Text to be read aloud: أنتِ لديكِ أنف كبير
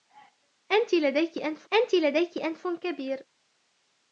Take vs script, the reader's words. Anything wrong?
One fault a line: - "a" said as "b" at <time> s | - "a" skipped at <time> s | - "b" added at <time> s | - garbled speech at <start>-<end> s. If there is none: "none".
- "أنتِ لديكِ أنف" added at 1.7 s